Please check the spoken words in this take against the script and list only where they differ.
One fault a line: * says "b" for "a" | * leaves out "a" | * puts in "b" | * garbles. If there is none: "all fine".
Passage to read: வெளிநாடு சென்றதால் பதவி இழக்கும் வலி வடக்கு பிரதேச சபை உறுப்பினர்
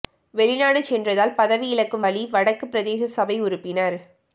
all fine